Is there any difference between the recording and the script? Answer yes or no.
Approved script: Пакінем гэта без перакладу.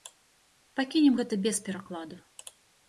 no